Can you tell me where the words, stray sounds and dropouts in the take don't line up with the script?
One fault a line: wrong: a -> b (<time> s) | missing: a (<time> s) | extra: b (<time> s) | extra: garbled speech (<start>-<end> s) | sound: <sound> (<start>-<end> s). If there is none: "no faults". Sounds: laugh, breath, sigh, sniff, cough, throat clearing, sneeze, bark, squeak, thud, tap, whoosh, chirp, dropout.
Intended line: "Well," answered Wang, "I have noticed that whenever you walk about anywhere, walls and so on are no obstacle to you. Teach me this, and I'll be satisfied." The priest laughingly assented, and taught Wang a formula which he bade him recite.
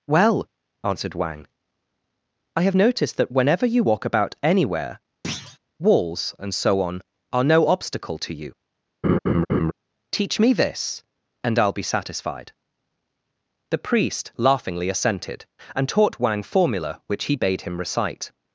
sound: thud (5.2-5.6 s)
sound: laugh (9.0-9.7 s)
missing: a (16.4 s)